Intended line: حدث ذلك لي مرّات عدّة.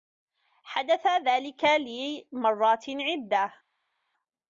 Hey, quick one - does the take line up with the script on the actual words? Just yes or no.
yes